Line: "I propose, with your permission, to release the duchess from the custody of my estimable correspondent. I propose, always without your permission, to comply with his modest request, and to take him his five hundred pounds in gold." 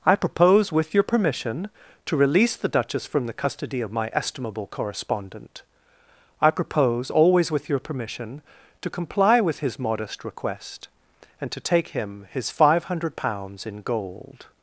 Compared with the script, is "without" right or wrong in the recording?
wrong